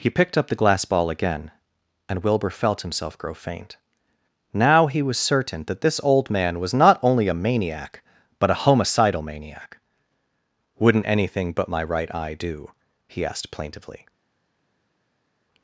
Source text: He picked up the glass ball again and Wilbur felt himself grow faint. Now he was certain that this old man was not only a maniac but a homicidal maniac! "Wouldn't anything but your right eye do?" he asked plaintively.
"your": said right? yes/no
no